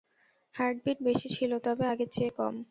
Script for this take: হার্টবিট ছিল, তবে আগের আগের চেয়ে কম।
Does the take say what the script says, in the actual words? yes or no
no